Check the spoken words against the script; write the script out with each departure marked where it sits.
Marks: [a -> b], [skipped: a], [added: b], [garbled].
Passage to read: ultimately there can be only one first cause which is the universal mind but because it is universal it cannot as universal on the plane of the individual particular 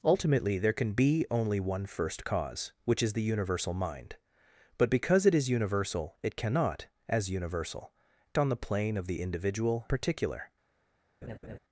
ultimately there can be only one first cause which is the universal mind but because it is universal it cannot as universal on the plane of the individual particular